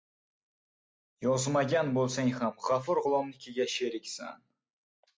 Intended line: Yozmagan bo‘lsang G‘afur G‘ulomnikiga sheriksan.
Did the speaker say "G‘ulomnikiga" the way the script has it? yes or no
yes